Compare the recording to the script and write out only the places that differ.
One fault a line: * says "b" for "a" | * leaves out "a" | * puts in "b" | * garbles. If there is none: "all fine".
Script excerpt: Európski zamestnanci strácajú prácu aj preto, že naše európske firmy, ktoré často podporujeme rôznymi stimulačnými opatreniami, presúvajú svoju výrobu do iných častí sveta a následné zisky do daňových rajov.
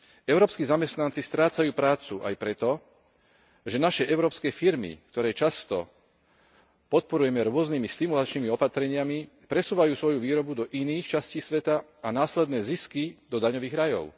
all fine